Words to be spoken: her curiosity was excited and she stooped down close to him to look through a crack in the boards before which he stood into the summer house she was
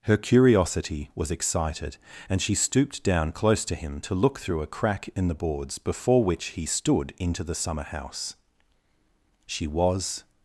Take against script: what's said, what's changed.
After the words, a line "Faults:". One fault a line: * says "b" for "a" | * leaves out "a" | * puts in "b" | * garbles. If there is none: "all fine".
her curiosity was excited and she stooped down close to him to look through a crack in the boards before which he stood into the summer house she was
Faults:
all fine